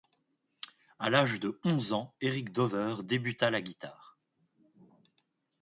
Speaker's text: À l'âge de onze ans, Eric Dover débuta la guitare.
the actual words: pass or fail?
pass